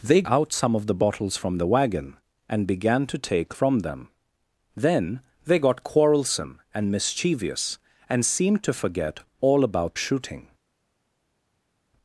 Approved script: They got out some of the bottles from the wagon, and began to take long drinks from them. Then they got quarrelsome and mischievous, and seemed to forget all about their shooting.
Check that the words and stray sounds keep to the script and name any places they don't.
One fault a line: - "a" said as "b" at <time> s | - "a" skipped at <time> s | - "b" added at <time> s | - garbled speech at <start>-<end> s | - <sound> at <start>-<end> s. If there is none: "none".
- "got" skipped at 0.2 s
- "long drinks" skipped at 3.5 s
- "their" skipped at 10.0 s